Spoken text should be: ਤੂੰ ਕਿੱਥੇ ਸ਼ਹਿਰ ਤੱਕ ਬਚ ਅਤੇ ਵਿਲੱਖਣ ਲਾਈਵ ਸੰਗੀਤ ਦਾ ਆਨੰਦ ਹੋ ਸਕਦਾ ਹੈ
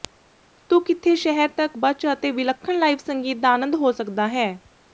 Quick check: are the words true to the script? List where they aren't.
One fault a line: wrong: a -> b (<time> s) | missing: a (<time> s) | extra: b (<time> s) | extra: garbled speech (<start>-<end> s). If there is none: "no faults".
no faults